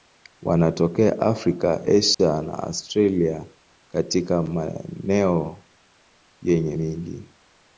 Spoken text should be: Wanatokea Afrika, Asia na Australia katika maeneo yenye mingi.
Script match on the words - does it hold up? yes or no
yes